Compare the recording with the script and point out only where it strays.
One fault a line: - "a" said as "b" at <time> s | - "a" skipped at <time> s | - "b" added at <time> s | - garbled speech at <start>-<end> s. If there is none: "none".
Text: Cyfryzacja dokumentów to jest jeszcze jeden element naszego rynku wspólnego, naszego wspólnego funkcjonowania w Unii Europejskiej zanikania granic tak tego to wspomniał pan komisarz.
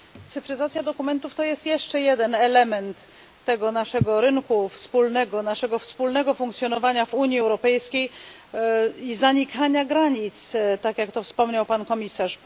- "tego" added at 3.4 s
- "i" added at 9.0 s
- "tego" said as "jak" at 11.0 s